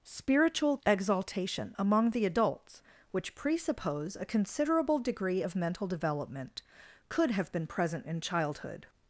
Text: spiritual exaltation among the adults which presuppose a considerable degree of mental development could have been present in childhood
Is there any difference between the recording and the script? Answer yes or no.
no